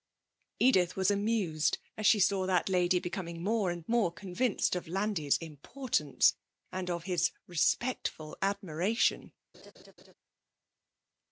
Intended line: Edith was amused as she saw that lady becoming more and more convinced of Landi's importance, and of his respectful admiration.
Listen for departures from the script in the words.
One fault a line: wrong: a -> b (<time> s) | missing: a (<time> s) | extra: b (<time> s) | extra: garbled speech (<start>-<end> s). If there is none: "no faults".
no faults